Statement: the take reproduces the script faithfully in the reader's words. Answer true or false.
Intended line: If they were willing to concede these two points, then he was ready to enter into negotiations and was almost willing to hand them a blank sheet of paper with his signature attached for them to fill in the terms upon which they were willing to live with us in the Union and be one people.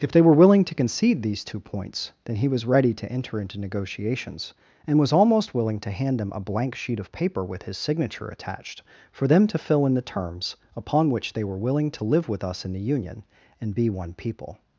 true